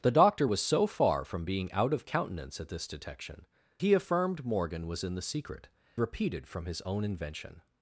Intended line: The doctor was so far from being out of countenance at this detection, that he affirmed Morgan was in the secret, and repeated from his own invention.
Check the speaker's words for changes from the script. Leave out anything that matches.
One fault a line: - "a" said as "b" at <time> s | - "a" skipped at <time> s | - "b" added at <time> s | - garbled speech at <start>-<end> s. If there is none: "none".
- "that" skipped at 3.4 s
- "and" skipped at 5.7 s